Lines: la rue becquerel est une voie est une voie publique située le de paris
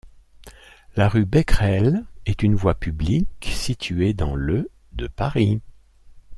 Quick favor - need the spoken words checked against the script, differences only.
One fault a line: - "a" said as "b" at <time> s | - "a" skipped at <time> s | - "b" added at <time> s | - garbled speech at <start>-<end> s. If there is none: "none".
- "est une voie" skipped at 2.7 s
- "dans" added at 4.1 s